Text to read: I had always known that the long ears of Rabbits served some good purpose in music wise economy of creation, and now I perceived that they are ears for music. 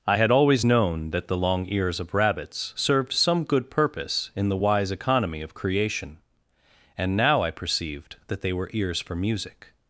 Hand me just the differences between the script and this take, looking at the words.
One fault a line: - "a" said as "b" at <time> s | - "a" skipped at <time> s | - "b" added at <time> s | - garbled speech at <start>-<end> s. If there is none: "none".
- "music" said as "the" at 4.5 s
- "are" said as "were" at 8.5 s